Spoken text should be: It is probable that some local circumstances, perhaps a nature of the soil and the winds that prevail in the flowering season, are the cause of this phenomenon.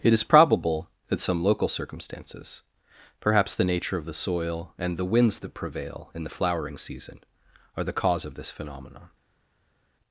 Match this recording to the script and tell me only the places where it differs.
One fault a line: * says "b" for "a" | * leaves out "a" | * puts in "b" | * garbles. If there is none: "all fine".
* says "the" for "a"